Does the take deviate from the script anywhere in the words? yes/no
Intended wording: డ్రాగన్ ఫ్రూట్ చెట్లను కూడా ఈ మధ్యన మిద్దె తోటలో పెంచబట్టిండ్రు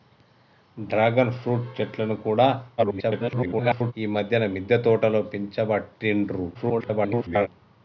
yes